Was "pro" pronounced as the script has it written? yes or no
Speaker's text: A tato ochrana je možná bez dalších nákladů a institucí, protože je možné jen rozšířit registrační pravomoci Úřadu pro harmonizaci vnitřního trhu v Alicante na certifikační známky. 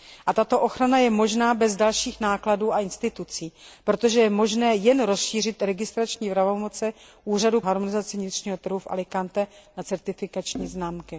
no